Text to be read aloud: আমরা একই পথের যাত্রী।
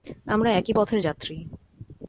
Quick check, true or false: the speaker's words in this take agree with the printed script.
true